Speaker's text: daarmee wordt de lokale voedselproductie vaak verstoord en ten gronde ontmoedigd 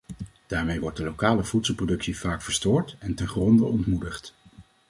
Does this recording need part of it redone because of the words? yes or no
no